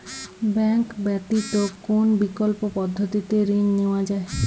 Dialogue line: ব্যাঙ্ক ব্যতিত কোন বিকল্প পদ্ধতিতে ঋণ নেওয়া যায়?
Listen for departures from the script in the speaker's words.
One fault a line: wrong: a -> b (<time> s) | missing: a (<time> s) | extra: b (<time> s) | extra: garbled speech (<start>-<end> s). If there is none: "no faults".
no faults